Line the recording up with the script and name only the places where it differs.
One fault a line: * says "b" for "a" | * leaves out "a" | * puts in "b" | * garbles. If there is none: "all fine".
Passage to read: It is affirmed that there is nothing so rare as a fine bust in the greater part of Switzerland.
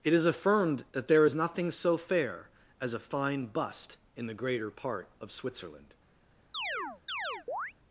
* says "fair" for "rare"